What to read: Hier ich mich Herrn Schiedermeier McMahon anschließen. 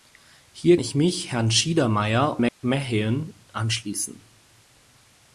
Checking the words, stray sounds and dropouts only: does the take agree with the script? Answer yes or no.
no